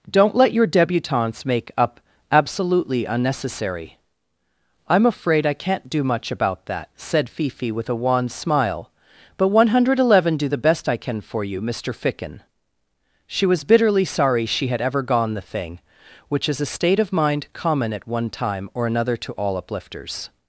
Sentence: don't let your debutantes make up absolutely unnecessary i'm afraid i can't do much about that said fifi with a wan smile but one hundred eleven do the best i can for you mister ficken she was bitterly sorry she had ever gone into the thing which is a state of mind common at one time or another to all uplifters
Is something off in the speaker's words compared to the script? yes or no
yes